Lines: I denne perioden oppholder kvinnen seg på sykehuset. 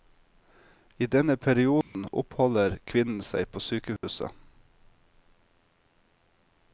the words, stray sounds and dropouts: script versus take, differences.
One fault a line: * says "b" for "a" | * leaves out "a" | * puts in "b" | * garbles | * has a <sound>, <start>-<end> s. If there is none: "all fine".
* has a dropout, 1.8-1.9 s
* has a dropout, 4.0-4.0 s